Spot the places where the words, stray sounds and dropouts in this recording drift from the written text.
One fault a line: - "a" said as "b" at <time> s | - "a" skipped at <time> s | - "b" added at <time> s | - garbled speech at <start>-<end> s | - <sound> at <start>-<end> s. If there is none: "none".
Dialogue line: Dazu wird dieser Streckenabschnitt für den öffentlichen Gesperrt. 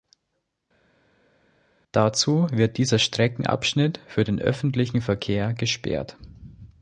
- "Verkehr" added at 5.0 s